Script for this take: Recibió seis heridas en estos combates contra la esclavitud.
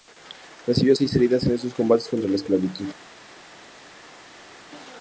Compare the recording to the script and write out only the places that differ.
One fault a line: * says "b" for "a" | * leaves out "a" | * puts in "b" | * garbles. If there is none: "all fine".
all fine